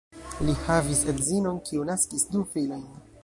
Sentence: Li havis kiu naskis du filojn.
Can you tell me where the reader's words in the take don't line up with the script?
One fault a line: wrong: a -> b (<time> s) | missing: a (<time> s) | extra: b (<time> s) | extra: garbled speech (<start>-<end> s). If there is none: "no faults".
extra: edzinon (1.1 s)